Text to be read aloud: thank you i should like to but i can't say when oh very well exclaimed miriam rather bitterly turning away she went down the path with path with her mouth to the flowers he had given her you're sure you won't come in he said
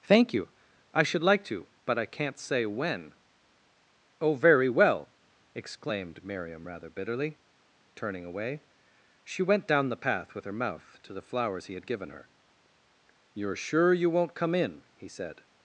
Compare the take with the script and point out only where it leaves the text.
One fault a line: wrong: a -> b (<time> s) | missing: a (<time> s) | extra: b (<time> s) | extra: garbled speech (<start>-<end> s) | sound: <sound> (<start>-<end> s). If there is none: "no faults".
missing: path with (10.4 s)